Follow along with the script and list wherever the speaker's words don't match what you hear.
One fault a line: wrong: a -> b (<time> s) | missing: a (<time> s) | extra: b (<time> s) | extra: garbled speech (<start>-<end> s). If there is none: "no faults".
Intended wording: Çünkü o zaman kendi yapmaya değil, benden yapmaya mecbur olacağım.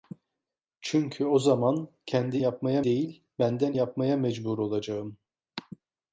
no faults